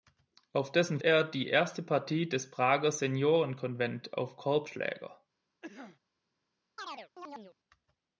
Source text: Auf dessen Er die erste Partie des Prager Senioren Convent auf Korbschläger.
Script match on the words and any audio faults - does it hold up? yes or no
no